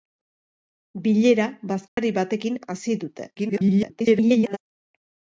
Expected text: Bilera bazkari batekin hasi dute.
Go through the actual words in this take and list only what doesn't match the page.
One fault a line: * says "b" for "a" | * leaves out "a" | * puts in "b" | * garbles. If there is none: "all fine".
* garbles